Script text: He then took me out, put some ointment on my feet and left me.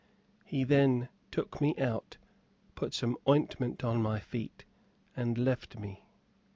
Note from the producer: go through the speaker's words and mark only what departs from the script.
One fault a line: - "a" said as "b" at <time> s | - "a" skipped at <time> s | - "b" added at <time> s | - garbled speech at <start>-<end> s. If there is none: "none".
none